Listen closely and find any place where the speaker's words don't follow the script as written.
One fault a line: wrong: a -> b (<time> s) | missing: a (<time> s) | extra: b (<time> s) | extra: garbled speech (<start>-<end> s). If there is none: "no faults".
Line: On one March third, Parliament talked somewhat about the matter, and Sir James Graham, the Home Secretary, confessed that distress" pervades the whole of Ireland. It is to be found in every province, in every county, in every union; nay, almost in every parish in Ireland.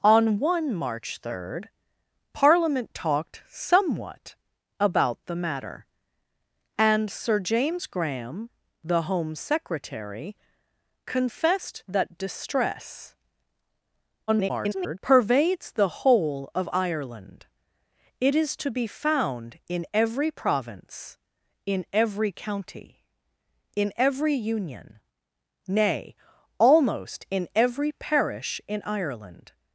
extra: garbled speech (14.3-15.0 s)